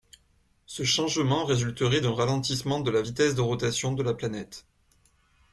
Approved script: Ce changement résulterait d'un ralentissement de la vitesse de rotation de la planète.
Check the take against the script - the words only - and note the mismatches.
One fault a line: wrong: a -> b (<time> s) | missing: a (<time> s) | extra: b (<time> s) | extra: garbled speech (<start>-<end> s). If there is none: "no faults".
no faults